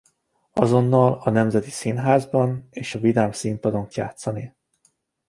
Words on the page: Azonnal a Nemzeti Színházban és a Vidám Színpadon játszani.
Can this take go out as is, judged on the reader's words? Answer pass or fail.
pass